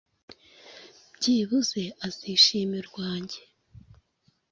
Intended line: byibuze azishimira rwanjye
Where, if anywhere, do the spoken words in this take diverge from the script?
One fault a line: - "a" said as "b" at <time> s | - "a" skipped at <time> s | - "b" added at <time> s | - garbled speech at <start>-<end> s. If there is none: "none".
none